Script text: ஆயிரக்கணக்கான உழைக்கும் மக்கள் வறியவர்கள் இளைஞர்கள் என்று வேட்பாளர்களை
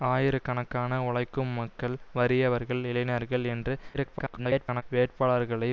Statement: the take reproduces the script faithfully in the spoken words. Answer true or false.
false